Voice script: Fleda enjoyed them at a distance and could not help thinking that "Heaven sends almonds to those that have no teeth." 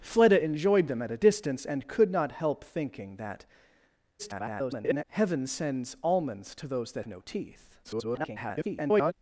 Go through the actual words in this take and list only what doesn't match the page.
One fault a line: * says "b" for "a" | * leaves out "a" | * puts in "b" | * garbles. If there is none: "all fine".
* garbles
* leaves out "have"
* garbles